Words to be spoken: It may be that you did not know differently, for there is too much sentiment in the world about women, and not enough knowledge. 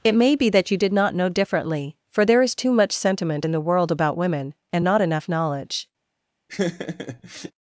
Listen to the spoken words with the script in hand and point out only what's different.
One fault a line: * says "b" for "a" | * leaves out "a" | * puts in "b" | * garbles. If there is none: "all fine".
all fine